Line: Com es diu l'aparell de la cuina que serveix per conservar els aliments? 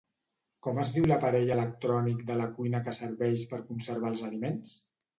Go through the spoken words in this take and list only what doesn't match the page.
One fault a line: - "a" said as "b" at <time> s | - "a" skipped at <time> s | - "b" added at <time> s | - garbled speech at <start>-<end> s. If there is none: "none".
- "electrònic" added at 1.6 s